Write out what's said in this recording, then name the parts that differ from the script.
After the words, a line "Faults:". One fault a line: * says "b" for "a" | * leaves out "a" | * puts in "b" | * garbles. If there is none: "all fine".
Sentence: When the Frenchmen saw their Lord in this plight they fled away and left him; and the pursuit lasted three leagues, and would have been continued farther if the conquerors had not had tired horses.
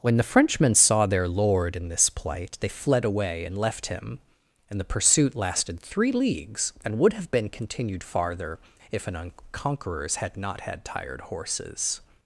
When the Frenchmen saw their Lord in this plight they fled away and left him; and the pursuit lasted three leagues, and would have been continued farther if an conquerors had not had tired horses.
Faults:
* says "an" for "the"